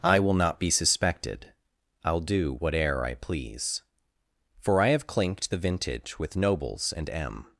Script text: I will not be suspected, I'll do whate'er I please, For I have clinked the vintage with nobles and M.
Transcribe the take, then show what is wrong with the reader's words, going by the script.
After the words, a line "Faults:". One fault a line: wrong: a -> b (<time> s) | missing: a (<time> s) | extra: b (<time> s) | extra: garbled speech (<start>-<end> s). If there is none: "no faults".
I will not be suspected, I'll do whate'er I please, For I have clinked the vintage with nobles and M.
Faults:
no faults